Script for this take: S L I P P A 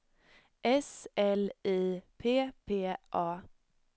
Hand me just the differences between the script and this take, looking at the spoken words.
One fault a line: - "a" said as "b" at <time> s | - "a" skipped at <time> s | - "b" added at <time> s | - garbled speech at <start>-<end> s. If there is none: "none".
none